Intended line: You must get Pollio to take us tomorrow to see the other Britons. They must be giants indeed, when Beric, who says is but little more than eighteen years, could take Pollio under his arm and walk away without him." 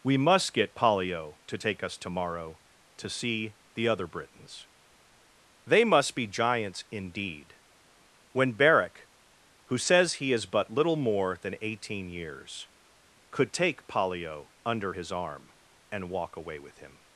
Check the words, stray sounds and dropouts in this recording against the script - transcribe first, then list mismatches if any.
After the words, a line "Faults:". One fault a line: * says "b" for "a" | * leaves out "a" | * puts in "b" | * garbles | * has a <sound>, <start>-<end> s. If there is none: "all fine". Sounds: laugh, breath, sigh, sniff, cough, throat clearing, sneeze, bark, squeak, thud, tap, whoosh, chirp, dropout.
We must get Pollio to take us tomorrow to see the other Britons. They must be giants indeed, when Beric, who says he is but little more than eighteen years, could take Pollio under his arm and walk away with him."
Faults:
* says "We" for "You"
* puts in "he"
* says "with" for "without"